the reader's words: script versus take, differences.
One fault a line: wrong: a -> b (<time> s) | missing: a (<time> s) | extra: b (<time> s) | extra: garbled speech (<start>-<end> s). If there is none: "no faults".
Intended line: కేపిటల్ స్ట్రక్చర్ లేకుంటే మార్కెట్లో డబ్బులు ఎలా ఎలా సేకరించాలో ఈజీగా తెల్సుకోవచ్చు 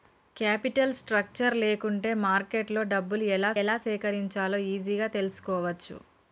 no faults